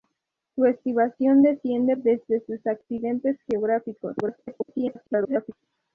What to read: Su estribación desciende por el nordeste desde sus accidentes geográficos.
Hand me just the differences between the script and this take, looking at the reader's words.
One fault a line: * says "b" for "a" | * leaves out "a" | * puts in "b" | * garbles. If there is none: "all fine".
* leaves out "por el nordeste"
* garbles